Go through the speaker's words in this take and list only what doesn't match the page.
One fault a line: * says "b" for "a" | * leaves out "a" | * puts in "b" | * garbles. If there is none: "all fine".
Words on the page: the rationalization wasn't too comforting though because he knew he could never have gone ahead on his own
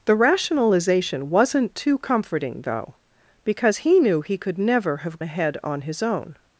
* leaves out "gone"